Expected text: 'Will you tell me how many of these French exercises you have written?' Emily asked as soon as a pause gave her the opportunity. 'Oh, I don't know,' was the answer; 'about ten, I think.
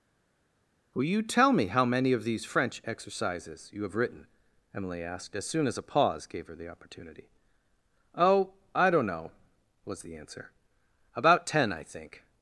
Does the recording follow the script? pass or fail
pass